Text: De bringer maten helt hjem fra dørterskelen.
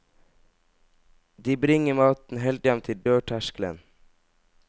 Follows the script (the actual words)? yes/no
no